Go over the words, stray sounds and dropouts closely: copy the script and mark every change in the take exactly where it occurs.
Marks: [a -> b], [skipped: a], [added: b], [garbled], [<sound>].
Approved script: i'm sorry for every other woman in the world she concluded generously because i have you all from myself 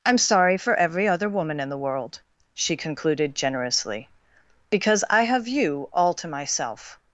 i'm sorry for every other woman in the world she concluded generously because i have you all [from -> to] myself